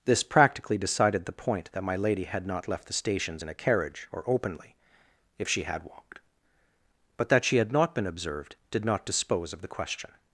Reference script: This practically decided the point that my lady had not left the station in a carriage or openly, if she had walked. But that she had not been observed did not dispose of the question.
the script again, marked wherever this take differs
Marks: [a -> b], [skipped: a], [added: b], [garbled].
This practically decided the point that my lady had not left the [station -> stations] in a carriage or openly, if she had walked. But that she had not been observed did not dispose of the question.